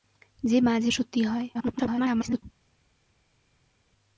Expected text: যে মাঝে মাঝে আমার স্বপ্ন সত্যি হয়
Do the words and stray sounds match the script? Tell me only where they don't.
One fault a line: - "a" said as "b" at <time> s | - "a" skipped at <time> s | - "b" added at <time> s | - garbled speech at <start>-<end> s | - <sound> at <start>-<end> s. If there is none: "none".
- "মাঝে আমার স্বপ্ন" skipped at 0.9 s
- garbled speech at 1.5-2.4 s